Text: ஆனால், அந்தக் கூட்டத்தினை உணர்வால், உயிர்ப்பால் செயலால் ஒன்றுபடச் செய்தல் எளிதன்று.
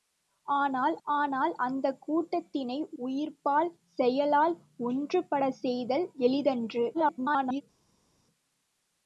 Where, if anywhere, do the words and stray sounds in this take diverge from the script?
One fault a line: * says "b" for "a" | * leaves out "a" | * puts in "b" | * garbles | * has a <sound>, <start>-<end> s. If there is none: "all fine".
* puts in "ஆனால்"
* leaves out "உணர்வால்"
* garbles